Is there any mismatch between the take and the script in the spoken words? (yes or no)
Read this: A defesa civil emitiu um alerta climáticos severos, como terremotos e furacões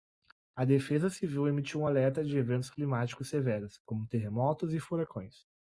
yes